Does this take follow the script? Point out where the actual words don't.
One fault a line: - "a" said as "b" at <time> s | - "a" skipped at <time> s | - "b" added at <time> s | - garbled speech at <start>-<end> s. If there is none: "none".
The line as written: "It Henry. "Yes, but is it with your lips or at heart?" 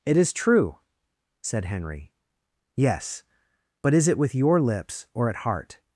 - "is true said" added at 0.2 s